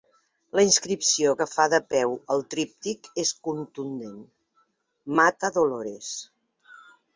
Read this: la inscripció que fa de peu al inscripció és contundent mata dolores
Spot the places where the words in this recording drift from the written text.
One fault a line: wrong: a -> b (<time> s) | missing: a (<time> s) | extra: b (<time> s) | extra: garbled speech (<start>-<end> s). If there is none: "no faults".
wrong: inscripció -> tríptic (2.6 s)